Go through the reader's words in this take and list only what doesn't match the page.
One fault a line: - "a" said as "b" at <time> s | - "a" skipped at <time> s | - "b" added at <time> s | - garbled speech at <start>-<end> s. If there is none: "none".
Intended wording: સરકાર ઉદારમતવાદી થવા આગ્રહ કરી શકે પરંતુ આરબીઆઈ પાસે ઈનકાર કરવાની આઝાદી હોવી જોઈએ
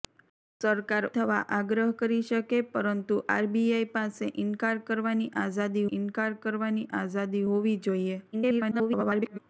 - "ઉદારમતવાદી" skipped at 1.1 s
- "ઈનકાર કરવાની આઝાદી" added at 5.9 s
- garbled speech at 8.3-9.4 s